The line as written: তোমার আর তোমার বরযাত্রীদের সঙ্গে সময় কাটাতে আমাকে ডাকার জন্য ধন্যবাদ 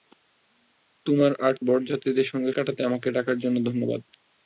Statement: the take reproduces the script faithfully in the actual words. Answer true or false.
false